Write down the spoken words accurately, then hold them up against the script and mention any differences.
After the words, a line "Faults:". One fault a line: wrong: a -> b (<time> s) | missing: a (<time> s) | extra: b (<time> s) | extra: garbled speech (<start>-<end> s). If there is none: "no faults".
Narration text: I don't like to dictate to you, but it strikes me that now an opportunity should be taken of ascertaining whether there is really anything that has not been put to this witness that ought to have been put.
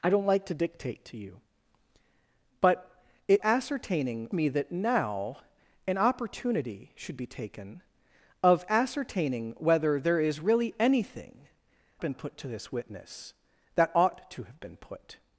I don't like to dictate to you, but it ascertaining me that now an opportunity should be taken of ascertaining whether there is really anything been put to this witness that ought to have been put.
Faults:
wrong: strikes -> ascertaining (3.4 s)
missing: that has not (11.5 s)